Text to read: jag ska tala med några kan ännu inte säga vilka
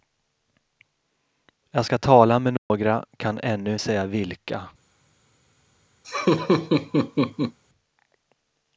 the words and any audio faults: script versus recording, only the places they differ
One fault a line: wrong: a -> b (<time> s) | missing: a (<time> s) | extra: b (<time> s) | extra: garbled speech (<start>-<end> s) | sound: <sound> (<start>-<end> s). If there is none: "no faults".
sound: dropout (2.6-2.7 s)
missing: inte (3.8 s)
sound: laugh (6.0-7.6 s)